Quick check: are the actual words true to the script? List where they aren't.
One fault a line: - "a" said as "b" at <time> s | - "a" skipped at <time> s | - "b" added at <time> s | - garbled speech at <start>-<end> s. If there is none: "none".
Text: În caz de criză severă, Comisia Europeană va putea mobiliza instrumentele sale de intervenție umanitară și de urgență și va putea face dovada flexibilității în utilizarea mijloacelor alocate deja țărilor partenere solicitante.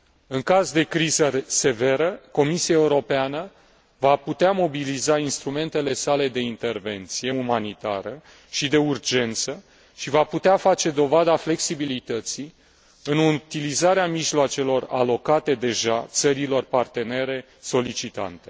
none